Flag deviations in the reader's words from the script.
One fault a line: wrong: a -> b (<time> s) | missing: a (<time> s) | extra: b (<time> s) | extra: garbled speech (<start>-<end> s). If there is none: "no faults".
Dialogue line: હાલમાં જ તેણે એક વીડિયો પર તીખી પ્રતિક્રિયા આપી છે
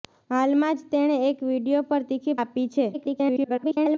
missing: પ્રતિક્રિયા (2.4 s)
extra: garbled speech (2.9-4.0 s)